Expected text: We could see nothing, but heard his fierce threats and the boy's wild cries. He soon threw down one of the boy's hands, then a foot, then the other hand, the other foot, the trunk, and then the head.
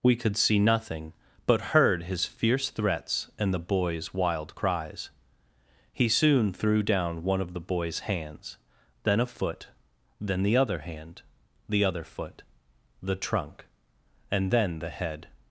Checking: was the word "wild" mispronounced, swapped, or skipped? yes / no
no